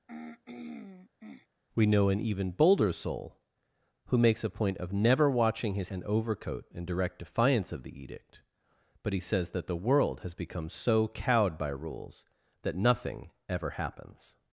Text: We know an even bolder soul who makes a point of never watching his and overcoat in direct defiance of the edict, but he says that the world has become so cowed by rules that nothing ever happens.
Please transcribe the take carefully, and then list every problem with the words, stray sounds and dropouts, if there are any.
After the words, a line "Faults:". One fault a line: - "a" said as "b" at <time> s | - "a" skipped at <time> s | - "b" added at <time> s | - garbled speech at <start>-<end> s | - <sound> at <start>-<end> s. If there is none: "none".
We know an even bolder soul who makes a point of never watching his and overcoat in direct defiance of the edict, but he says that the world has become so cowed by rules that nothing ever happens.
Faults:
- throat clearing at 0.1-1.5 s